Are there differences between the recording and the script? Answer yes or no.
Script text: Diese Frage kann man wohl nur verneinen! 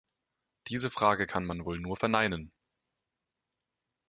no